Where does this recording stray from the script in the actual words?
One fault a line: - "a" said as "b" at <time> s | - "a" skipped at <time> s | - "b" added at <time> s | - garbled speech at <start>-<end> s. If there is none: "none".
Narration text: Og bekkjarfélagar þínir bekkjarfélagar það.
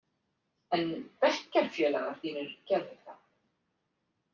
- "Og" said as "En" at 0.8 s
- "bekkjarfélagar" said as "gerðu" at 2.7 s